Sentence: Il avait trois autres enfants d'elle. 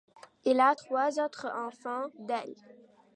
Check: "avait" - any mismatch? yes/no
yes